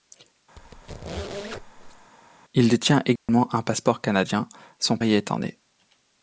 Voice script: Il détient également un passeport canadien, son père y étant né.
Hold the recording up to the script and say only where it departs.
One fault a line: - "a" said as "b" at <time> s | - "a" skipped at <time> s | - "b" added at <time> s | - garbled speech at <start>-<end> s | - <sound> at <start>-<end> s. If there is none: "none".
- squeak at 0.6-2.1 s
- dropout at 3.2-3.3 s
- "père" skipped at 5.0 s